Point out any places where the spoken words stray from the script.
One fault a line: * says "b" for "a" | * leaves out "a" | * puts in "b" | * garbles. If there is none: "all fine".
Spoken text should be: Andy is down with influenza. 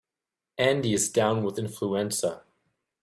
all fine